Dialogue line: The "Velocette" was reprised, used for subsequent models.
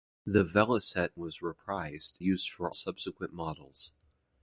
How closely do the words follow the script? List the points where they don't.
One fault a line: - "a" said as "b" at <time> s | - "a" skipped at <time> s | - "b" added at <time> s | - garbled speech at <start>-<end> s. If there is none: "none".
none